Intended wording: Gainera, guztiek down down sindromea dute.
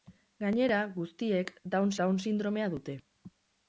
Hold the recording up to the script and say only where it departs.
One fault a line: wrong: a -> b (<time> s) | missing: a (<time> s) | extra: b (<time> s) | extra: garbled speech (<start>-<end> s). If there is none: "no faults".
no faults